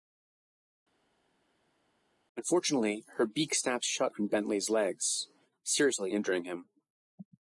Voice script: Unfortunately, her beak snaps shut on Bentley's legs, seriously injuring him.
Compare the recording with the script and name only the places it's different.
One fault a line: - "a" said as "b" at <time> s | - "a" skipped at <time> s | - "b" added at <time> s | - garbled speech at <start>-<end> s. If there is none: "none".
none